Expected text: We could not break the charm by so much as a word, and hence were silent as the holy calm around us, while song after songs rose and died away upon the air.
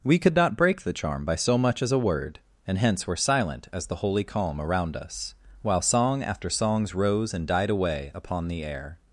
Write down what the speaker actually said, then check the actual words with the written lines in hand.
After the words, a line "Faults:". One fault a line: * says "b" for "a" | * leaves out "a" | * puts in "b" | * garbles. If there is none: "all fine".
We could not break the charm by so much as a word, and hence were silent as the holy calm around us, while song after songs rose and died away upon the air.
Faults:
all fine